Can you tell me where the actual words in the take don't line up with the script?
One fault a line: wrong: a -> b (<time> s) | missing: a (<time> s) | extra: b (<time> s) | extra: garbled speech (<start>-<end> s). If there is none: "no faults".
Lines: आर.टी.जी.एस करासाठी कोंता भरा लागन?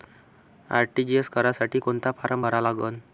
extra: फारम (2.1 s)